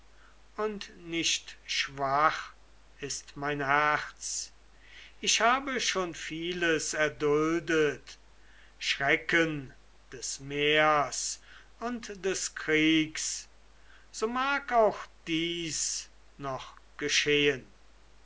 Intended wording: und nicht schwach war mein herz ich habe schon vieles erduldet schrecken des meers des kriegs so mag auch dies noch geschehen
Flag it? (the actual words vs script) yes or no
yes